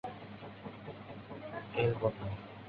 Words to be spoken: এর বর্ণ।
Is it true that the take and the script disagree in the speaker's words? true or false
false